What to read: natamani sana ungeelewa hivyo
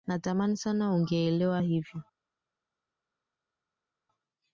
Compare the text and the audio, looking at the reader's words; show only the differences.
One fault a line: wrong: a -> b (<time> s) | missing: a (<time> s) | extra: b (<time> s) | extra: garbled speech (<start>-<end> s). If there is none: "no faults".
no faults